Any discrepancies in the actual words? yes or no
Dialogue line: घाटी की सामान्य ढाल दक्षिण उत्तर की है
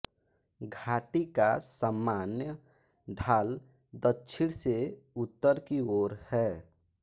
yes